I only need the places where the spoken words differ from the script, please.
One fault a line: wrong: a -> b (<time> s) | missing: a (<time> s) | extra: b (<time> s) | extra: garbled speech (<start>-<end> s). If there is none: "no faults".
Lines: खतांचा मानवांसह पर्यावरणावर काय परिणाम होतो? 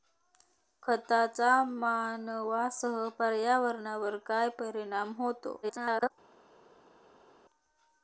extra: garbled speech (5.6-6.1 s)